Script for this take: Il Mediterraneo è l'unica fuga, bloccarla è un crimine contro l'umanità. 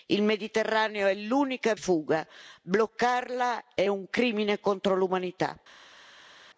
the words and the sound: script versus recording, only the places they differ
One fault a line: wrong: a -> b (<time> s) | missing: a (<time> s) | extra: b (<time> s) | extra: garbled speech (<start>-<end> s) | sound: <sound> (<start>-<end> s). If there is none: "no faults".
no faults